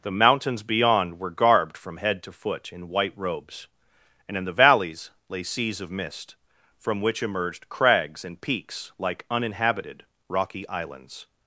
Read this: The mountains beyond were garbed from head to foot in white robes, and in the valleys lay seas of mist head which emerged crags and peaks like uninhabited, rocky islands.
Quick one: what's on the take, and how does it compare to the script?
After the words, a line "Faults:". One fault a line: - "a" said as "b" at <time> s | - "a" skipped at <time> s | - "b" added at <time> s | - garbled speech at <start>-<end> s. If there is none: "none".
The mountains beyond were garbed from head to foot in white robes, and in the valleys lay seas of mist from which emerged crags and peaks like uninhabited, rocky islands.
Faults:
- "head" said as "from" at 6.8 s